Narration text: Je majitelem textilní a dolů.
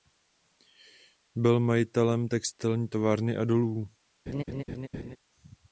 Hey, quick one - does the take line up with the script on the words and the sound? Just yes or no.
no